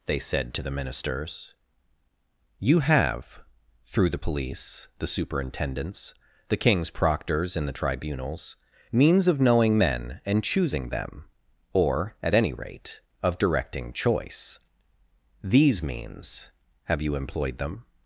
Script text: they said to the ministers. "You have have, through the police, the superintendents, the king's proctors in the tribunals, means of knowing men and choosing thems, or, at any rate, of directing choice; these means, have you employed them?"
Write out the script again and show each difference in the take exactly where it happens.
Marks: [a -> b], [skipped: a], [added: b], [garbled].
they said to the ministers. "You have [skipped: have,] through the police, the superintendents, the king's proctors in the tribunals, means of knowing men and choosing [thems, -> them] or, at any rate, of directing choice; these means, have you employed them?"